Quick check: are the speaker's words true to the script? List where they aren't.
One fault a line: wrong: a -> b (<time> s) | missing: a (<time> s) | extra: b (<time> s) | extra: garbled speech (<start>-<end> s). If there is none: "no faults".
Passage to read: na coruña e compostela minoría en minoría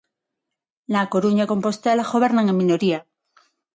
wrong: minoría -> gobernan (2.1 s)